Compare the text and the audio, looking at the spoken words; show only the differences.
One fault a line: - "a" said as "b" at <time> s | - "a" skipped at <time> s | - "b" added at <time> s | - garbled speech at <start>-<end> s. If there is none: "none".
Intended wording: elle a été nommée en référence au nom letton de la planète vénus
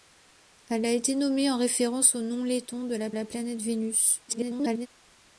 - "la" added at 3.1 s
- garbled speech at 4.3-4.9 s